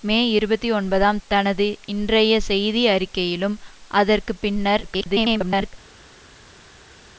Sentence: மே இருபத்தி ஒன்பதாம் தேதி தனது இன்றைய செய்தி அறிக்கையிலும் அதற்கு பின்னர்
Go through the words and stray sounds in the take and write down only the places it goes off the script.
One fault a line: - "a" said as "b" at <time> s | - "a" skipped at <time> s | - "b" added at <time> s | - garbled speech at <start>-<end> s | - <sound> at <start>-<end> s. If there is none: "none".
- "தேதி" skipped at 1.2 s
- garbled speech at 4.8-5.7 s